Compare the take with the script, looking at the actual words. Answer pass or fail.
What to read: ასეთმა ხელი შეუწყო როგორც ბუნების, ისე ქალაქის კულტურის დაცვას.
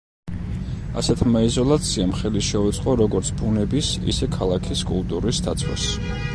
fail